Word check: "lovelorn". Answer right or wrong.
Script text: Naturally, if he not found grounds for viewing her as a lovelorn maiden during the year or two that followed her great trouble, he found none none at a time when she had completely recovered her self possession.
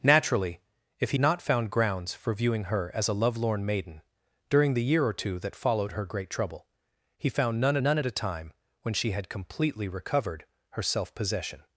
right